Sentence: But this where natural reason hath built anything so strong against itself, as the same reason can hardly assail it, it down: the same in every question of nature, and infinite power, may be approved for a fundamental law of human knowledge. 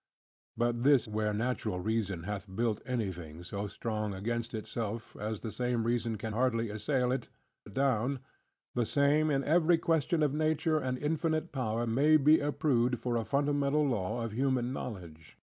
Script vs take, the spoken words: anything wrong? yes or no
no